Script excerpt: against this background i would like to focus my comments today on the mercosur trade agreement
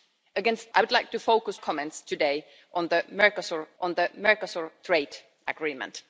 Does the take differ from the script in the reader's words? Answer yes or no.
yes